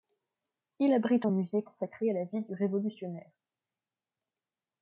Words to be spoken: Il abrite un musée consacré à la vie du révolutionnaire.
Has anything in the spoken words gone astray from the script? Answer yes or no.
no